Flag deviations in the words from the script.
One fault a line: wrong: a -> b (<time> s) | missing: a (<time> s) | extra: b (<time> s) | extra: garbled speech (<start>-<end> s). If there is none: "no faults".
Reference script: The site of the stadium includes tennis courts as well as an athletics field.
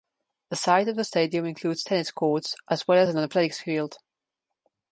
no faults